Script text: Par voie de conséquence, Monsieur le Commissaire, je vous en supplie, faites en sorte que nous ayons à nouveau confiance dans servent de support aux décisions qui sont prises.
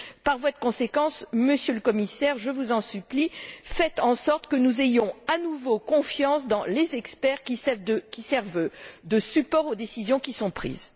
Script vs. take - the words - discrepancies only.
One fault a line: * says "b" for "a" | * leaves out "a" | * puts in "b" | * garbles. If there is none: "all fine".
* puts in "les experts qui"